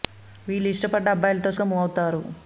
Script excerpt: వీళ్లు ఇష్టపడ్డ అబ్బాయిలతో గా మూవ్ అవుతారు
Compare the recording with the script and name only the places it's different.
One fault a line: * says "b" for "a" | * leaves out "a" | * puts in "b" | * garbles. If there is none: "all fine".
all fine